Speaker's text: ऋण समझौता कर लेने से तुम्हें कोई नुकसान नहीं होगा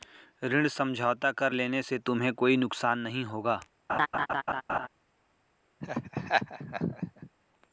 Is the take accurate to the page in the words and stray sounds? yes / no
no